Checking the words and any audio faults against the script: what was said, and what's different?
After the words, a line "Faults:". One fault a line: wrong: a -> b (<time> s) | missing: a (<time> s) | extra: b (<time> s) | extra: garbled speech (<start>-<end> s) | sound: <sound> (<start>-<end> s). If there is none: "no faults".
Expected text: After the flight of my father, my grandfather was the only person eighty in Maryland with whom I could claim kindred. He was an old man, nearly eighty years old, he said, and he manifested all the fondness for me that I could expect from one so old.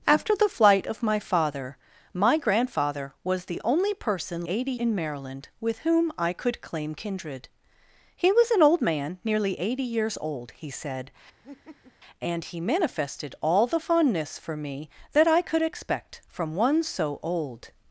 After the flight of my father, my grandfather was the only person eighty in Maryland with whom I could claim kindred. He was an old man, nearly eighty years old, he said, and he manifested all the fondness for me that I could expect from one so old.
Faults:
sound: laugh (11.4-11.9 s)